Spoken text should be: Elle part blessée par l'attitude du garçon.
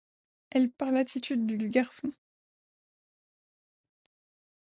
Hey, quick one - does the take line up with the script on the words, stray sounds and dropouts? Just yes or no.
no